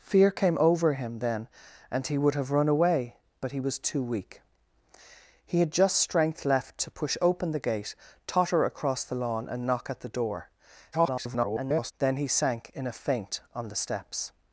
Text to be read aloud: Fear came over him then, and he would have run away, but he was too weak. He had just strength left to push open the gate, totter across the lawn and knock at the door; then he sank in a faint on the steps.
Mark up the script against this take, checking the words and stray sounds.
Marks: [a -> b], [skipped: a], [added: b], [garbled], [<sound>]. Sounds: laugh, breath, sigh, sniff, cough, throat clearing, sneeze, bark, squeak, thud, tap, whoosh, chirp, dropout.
Fear came over him then, and he would have run away, but he was too weak. He had just strength left to push open the gate, totter across the lawn and knock at the door; [garbled] then he sank in a faint on the steps.